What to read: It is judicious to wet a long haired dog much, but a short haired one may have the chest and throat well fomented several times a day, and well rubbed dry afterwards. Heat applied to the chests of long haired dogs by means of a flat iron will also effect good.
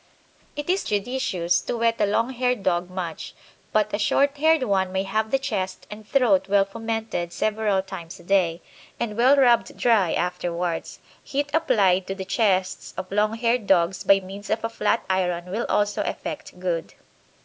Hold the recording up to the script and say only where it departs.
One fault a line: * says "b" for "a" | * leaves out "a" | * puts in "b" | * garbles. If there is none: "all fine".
all fine